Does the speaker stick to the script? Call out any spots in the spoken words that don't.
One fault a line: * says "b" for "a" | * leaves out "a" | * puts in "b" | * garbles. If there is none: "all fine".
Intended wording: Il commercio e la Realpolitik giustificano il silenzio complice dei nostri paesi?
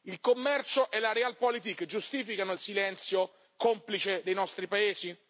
all fine